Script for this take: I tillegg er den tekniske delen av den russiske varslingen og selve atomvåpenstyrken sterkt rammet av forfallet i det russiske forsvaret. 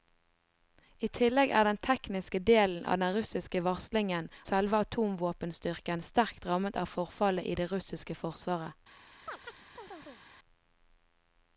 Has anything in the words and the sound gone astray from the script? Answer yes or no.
yes